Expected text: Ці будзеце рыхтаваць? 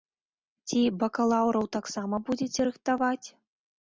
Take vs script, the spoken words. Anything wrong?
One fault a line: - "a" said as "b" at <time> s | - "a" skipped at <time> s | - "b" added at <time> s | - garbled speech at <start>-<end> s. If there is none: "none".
- "бакалаўраў таксама" added at 1.0 s